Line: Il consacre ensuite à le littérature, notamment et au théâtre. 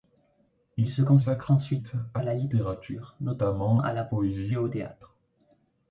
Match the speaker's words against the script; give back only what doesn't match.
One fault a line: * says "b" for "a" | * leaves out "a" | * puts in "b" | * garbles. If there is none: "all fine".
* puts in "se"
* says "la" for "le"
* puts in "à la poésie"